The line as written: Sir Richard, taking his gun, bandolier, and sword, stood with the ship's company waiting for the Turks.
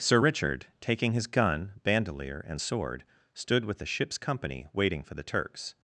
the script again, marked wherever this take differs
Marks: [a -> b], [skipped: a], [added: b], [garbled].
Sir Richard, taking his gun, bandolier, and sword, stood with the ship's company waiting for the Turks.